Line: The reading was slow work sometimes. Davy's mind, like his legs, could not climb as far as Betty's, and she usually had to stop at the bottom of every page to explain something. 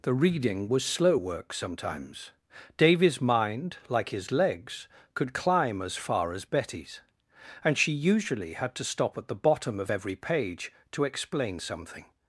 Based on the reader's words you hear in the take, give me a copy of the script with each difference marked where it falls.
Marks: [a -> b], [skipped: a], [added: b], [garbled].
The reading was slow work sometimes. Davy's mind, like his legs, could [skipped: not] climb as far as Betty's, and she usually had to stop at the bottom of every page to explain something.